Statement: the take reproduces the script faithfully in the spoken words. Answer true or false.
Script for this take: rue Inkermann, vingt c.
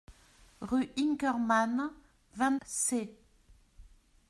true